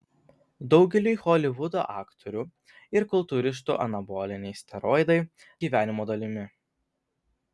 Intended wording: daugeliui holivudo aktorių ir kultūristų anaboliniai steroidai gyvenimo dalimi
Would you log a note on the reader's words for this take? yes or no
no